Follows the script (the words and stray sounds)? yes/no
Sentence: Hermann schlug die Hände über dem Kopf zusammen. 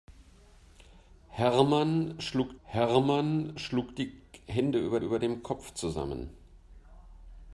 no